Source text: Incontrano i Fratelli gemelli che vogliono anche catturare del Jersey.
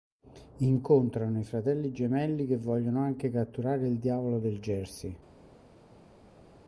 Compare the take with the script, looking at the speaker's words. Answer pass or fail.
fail